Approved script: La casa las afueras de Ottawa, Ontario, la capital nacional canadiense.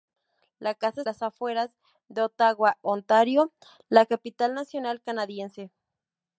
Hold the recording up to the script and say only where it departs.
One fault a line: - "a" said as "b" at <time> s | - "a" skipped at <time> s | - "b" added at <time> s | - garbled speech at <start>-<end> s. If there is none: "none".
none